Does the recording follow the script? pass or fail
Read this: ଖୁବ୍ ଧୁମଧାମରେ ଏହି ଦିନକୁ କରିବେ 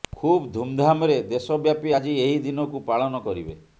fail